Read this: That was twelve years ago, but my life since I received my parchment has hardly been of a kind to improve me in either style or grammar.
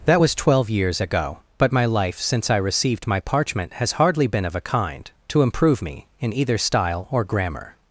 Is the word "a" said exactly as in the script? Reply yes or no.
yes